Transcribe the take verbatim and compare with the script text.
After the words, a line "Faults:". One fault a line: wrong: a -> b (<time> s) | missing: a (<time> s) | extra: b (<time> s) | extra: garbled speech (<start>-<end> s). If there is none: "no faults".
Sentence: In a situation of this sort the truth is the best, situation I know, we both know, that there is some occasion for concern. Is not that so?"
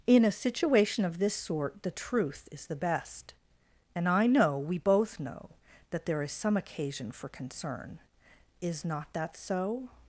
In a situation of this sort the truth is the best, and I know, we both know, that there is some occasion for concern. Is not that so?"
Faults:
wrong: situation -> and (3.9 s)